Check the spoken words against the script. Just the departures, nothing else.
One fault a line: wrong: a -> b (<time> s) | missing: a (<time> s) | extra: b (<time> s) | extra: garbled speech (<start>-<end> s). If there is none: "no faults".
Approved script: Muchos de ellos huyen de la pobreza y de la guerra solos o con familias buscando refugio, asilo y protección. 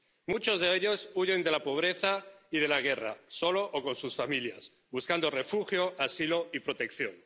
extra: sus (4.0 s)